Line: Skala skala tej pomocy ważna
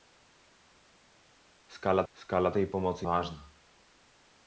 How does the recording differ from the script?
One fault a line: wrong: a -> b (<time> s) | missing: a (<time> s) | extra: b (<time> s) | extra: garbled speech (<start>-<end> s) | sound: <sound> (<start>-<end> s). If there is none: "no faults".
no faults